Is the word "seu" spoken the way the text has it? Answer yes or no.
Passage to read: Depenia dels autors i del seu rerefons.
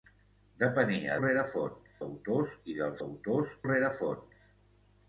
no